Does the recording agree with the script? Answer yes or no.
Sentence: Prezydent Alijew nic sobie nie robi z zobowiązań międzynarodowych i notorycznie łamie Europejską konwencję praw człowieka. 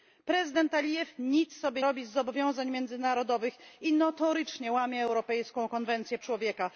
no